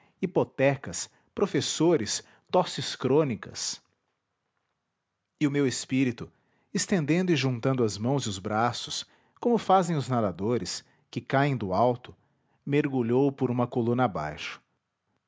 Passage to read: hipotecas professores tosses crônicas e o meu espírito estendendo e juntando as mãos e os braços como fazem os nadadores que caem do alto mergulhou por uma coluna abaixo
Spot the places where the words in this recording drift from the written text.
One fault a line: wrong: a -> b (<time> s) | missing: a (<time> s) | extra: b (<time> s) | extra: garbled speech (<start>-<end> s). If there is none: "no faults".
no faults